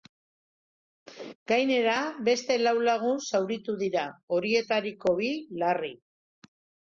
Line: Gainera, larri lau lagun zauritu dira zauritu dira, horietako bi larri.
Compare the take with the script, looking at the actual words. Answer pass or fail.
fail